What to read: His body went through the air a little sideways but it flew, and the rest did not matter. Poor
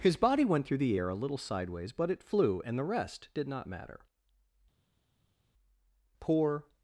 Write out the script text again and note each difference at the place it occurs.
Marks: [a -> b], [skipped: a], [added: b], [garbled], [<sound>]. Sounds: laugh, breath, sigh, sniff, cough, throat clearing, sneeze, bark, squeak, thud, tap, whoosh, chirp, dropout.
His body went through the air a little sideways but it flew, and the rest did not matter. Poor